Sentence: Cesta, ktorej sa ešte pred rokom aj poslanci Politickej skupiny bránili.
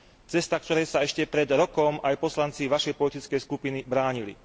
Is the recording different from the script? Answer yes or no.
yes